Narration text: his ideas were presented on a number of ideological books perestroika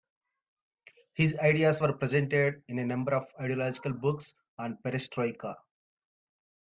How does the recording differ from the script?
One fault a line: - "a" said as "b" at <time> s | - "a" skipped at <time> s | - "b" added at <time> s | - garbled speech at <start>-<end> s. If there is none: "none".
- "on" said as "in" at 2.7 s
- "on" added at 4.6 s